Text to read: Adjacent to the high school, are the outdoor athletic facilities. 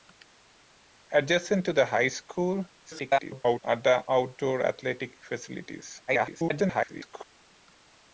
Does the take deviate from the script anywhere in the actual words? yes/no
yes